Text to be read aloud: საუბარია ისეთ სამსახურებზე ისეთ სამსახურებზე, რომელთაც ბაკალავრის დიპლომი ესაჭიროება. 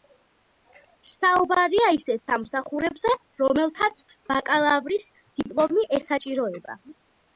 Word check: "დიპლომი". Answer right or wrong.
right